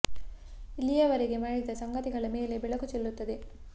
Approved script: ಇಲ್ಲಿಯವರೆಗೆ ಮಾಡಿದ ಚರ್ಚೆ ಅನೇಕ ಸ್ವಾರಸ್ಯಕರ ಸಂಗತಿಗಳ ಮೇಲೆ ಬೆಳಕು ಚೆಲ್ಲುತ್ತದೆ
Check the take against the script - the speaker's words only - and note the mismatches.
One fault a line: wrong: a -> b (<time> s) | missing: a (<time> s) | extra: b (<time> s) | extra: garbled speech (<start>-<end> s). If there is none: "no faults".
missing: ಚರ್ಚೆ ಅನೇಕ ಸ್ವಾರಸ್ಯಕರ (1.7 s)